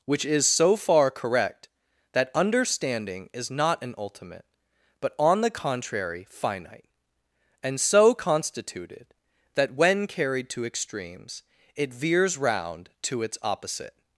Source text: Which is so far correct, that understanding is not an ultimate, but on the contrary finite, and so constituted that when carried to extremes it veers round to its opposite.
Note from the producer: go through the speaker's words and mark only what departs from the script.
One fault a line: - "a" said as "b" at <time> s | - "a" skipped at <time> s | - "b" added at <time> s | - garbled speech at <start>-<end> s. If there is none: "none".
none